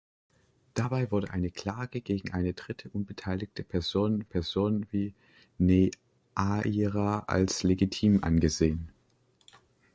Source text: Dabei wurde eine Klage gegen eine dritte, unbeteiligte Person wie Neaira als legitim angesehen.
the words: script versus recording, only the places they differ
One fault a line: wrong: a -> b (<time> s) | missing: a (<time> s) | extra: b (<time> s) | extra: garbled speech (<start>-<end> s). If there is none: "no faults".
extra: Person (4.2 s)